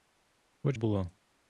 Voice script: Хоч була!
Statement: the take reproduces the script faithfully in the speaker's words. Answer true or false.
true